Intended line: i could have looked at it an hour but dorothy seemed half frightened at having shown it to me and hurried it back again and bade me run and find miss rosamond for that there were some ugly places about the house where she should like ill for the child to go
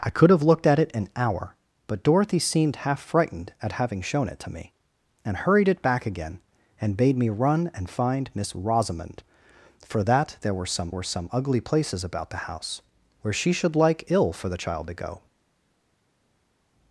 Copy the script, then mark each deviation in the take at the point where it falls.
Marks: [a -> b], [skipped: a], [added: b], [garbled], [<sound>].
i could have looked at it an hour but dorothy seemed half frightened at having shown it to me and hurried it back again and bade me run and find miss rosamond for that there were some [added: were some] ugly places about the house where she should like ill for the child to go